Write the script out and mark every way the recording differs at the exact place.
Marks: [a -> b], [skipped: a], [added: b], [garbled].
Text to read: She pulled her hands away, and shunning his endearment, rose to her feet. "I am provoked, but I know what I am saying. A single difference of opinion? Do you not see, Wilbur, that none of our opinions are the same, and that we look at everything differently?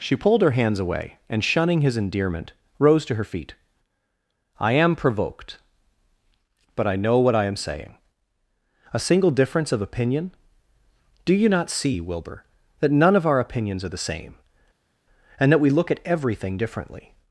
She pulled her hands away, and shunning his endearment, rose to her feet. "I am provoked, but I know what I am saying. A single difference of opinion? Do you not see, Wilbur, that none of our opinions are the same, and that we look at everything differently?